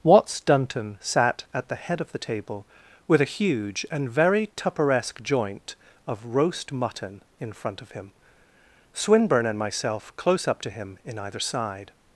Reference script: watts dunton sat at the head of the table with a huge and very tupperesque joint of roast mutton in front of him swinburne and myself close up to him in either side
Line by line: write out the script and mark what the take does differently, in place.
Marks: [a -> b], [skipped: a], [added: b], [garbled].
watts dunton sat at the head of the table with a huge and very tupperesque joint of roast mutton in front of him swinburne and myself close up to him in either side